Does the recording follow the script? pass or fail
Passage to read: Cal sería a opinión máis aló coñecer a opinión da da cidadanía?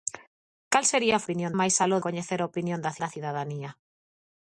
pass